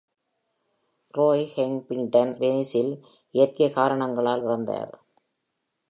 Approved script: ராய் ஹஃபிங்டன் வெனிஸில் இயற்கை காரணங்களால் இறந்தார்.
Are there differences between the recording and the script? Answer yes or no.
no